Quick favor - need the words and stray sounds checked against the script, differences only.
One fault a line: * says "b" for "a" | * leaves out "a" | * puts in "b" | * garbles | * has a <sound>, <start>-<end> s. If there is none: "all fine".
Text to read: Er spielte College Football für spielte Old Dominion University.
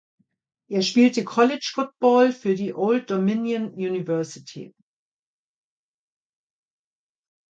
* says "die" for "spielte"